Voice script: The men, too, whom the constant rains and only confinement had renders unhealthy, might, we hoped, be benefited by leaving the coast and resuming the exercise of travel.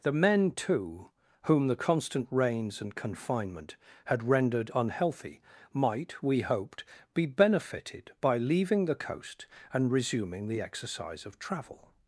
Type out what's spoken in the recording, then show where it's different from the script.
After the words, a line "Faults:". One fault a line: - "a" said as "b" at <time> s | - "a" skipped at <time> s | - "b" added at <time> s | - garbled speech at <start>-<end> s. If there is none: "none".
The men, too, whom the constant rains and confinement had rendered unhealthy, might, we hoped, be benefited by leaving the coast and resuming the exercise of travel.
Faults:
- "only" skipped at 3.0 s
- "renders" said as "rendered" at 4.2 s